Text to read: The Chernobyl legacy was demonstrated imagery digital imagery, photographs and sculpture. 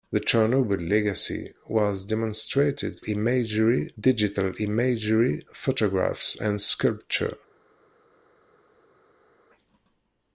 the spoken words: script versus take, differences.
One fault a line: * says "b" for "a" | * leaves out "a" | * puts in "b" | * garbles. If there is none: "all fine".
all fine